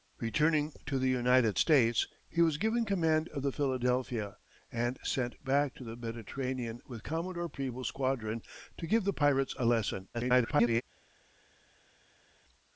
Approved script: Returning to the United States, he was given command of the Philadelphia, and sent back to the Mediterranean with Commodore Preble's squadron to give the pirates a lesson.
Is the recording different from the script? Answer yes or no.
yes